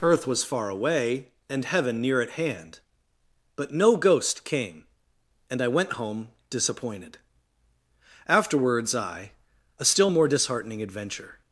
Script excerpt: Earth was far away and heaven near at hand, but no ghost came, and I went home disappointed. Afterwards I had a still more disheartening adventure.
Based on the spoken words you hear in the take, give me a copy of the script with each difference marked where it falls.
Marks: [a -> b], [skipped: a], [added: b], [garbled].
Earth was far away and heaven near at hand, but no ghost came, and I went home disappointed. Afterwards I [skipped: had] a still more disheartening adventure.